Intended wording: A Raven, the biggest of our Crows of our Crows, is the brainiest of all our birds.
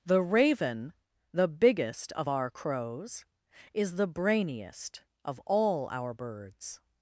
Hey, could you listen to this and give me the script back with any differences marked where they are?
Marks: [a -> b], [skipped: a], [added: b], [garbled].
[A -> The] Raven, the biggest of our Crows [skipped: of our Crows,] is the brainiest of all our birds.